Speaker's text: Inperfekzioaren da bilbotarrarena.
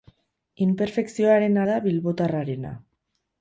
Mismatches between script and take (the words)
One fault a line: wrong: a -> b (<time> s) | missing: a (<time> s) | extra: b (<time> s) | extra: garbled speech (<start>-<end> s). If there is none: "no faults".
no faults